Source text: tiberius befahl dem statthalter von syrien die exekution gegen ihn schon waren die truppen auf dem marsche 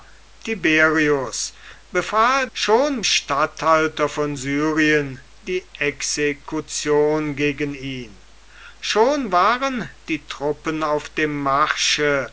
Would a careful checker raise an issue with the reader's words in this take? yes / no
yes